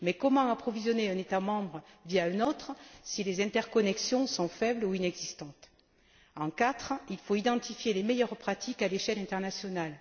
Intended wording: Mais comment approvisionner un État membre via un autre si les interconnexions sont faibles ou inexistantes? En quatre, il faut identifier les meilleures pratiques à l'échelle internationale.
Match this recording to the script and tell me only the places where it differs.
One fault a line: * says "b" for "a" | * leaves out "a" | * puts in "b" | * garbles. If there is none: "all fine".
all fine